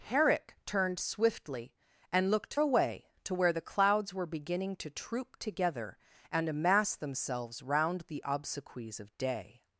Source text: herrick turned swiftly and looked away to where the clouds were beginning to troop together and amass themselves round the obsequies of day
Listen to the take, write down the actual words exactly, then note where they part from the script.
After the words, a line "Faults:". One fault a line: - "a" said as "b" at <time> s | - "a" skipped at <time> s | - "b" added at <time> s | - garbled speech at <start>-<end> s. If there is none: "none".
herrick turned swiftly and looked away to where the clouds were beginning to troop together and amass themselves round the obsequies of day
Faults:
none